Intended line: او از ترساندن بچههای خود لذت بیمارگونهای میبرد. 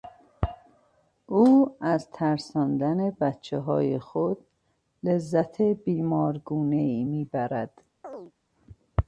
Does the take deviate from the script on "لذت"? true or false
false